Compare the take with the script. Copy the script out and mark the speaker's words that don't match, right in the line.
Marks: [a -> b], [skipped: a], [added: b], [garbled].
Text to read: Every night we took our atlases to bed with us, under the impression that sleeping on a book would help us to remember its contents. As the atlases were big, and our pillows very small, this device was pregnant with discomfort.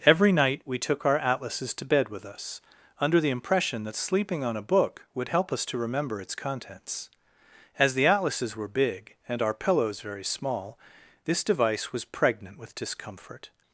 Every night we took our atlases to bed with us, under the impression that sleeping on a book would help us to remember its contents. As the atlases were big, and our pillows very small, this device was pregnant with discomfort.